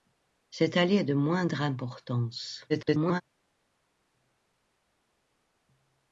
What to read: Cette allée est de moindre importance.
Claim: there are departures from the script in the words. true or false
true